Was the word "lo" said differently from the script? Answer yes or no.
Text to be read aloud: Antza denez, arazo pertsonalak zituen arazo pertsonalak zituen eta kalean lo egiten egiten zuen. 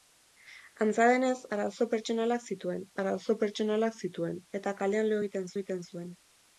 no